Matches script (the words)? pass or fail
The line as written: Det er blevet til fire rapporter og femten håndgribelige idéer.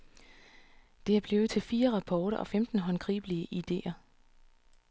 pass